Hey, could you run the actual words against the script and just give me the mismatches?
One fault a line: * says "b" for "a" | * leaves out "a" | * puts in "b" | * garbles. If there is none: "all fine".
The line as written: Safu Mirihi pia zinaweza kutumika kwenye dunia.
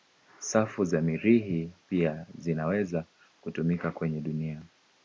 * puts in "za"